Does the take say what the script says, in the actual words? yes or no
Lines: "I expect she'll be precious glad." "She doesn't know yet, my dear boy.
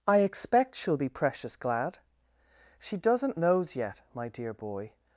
no